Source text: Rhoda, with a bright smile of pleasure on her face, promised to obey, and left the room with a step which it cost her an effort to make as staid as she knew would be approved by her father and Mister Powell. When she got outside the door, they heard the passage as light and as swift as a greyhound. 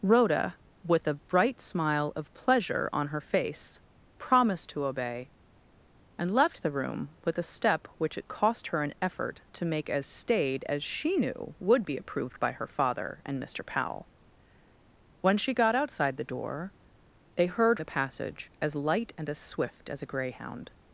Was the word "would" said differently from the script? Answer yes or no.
no